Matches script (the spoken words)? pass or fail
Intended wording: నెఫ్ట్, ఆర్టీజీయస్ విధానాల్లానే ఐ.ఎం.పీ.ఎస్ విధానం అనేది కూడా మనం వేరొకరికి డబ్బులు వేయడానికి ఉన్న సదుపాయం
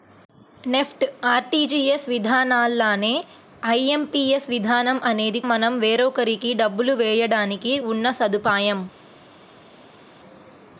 fail